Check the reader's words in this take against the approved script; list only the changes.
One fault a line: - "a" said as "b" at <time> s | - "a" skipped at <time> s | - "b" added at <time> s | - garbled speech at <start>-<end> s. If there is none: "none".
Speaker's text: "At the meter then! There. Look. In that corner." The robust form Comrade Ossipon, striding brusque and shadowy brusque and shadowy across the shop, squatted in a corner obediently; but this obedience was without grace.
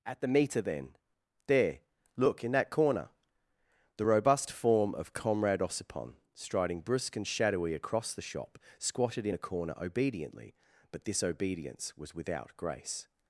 - "of" added at 4.9 s
- "brusque and shadowy" skipped at 7.7 s